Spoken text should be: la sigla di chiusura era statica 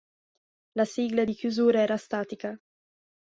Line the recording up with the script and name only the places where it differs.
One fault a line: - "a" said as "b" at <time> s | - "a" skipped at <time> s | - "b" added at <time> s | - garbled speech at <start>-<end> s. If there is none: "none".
none